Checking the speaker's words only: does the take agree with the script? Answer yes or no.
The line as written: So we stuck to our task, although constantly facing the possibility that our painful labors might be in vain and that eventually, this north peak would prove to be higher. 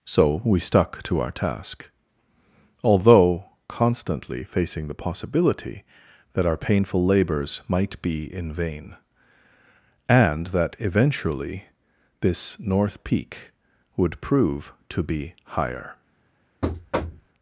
yes